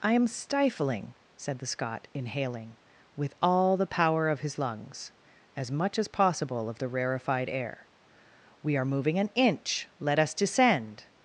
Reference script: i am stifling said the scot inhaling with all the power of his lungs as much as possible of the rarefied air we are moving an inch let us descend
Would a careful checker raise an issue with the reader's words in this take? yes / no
no